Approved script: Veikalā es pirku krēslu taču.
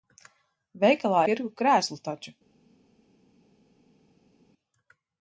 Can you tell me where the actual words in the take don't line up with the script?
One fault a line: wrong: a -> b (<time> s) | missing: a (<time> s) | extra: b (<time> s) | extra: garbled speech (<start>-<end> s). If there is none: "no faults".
missing: es (1.2 s)